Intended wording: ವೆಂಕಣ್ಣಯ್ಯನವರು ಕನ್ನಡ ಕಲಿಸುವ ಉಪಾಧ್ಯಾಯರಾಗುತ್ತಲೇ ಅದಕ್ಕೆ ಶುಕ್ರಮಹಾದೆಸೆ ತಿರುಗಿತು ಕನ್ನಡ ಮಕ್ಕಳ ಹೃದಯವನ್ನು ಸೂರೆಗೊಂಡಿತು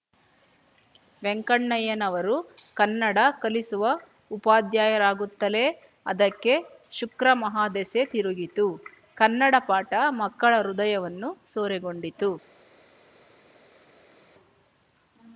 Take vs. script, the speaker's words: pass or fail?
fail